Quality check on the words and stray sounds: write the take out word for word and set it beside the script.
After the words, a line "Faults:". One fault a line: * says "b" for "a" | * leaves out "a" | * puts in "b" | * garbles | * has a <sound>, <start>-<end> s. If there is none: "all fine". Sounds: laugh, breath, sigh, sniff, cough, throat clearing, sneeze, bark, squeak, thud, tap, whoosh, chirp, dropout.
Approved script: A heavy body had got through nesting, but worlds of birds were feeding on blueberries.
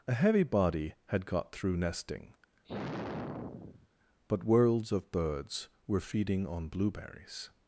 A heavy body had got through nesting, but worlds of birds were feeding on blueberries.
Faults:
* has a sigh, 2.6-3.9 s